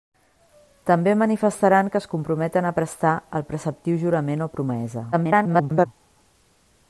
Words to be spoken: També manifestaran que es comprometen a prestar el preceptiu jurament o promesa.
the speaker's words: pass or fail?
fail